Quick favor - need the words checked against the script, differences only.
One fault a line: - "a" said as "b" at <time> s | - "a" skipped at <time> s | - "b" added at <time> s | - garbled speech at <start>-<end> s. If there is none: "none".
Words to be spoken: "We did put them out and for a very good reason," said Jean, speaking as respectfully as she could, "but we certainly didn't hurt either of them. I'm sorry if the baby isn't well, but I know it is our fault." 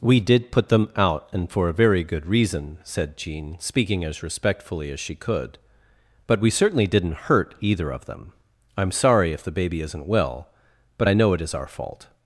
none